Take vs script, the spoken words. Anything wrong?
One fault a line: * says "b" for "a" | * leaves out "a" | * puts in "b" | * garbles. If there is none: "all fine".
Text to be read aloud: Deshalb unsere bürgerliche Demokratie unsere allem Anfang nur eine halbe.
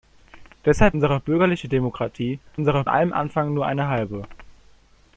all fine